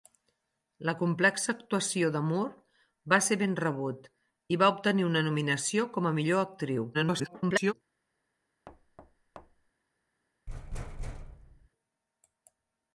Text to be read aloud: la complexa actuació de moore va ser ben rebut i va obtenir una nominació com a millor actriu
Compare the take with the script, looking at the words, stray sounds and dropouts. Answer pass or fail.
fail